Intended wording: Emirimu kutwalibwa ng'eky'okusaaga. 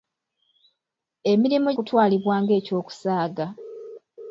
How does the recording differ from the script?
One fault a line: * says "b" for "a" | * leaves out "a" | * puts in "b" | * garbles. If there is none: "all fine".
all fine